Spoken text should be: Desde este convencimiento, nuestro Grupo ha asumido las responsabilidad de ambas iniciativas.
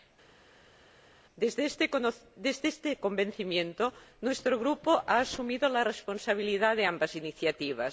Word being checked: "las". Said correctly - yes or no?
no